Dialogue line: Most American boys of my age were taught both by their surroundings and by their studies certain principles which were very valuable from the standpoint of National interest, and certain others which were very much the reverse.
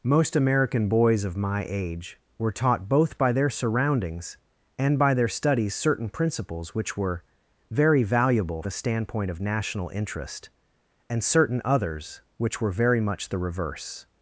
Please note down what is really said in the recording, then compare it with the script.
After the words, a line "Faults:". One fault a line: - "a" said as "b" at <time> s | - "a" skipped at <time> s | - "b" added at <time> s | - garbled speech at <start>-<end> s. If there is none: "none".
Most American boys of my age were taught both by their surroundings and by their studies certain principles which were very valuable the standpoint of National interest, and certain others which were very much the reverse.
Faults:
- "from" skipped at 8.6 s